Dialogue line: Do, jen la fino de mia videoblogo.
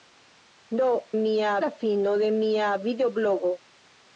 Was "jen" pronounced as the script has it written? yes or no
no